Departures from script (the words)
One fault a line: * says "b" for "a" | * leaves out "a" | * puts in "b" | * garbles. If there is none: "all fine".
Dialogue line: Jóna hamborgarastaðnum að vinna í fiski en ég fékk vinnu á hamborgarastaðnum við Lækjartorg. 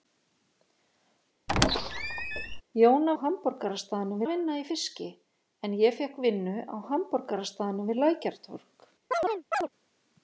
all fine